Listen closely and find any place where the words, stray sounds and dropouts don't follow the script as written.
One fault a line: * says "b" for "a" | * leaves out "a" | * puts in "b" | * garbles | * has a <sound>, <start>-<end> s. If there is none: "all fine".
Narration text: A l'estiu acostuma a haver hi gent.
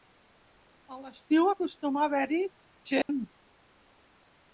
* has a dropout, 3.0-3.1 s